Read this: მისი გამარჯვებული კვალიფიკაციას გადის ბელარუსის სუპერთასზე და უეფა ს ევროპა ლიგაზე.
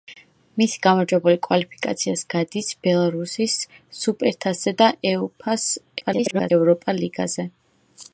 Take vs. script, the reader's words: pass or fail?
fail